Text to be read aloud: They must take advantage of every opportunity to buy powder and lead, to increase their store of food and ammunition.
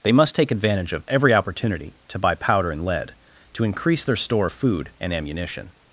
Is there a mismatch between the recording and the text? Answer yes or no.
no